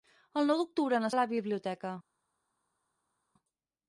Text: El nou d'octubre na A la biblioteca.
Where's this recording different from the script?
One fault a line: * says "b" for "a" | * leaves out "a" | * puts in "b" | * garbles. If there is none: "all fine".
all fine